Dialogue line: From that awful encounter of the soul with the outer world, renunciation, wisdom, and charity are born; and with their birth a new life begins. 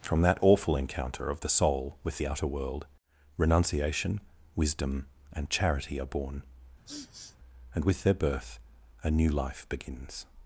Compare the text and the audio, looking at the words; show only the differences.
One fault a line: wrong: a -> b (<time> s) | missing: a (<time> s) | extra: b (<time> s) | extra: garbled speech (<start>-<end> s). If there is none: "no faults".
no faults